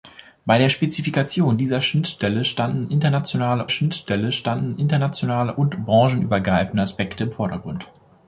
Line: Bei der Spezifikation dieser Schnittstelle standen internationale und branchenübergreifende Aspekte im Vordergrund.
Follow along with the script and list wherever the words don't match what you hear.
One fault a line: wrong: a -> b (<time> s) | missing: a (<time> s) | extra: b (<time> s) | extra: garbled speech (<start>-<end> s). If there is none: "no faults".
extra: Schnittstelle standen internationale (3.7 s)